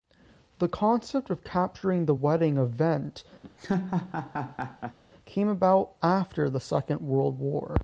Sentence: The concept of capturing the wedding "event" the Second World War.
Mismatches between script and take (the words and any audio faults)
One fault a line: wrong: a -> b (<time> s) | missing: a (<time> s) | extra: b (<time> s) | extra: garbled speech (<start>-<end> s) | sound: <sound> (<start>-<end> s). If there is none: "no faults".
sound: laugh (3.4-5.0 s)
extra: came about after (5.2 s)